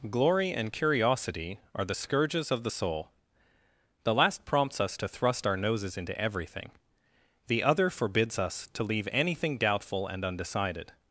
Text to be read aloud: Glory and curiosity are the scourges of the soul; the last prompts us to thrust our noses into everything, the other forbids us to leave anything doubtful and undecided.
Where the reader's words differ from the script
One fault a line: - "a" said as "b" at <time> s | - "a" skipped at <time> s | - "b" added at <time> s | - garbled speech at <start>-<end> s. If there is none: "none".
none